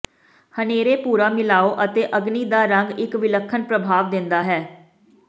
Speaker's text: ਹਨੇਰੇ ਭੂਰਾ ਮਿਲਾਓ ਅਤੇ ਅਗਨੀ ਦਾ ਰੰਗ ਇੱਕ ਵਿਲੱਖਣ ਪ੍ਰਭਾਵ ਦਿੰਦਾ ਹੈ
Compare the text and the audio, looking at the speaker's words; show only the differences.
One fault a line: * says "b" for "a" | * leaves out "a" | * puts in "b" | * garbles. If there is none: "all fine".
all fine